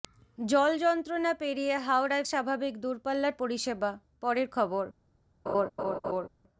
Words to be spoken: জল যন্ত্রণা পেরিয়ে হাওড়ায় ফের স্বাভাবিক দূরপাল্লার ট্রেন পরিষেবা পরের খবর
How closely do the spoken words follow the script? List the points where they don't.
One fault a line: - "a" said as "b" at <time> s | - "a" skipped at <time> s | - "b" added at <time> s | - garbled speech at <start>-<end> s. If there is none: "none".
- "ফের" skipped at 2.2 s
- "ট্রেন" skipped at 3.3 s